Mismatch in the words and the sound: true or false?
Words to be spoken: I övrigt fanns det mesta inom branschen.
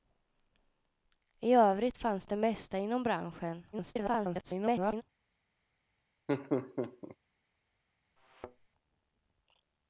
true